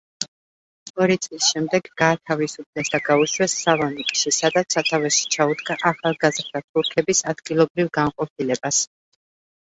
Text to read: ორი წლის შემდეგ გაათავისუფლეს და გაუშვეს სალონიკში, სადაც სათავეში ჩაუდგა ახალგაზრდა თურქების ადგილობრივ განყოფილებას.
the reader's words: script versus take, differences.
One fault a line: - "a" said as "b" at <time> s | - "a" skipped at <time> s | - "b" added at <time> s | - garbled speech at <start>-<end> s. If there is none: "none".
none